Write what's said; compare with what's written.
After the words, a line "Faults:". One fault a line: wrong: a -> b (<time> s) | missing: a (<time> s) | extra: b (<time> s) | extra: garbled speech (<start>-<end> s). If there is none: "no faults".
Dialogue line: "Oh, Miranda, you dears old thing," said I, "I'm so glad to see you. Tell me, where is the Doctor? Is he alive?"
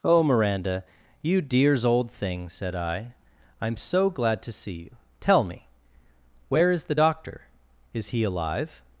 "Oh, Miranda, you dears old thing," said I, "I'm so glad to see you. Tell me, where is the Doctor? Is he alive?"
Faults:
no faults